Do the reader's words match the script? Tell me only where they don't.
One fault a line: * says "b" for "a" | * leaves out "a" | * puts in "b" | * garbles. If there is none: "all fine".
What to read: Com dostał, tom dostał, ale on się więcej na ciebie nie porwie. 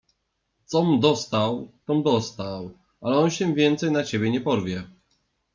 all fine